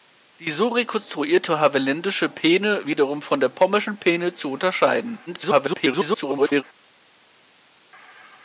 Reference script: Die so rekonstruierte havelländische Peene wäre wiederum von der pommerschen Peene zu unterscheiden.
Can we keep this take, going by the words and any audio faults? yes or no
no